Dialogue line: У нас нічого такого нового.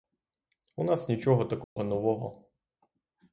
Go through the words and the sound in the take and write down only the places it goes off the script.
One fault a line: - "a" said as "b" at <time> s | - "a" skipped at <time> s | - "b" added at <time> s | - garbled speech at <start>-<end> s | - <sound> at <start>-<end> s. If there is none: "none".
- dropout at 1.6-1.8 s